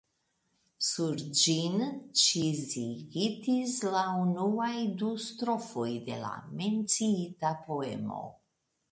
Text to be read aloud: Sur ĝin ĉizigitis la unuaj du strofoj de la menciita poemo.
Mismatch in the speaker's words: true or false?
false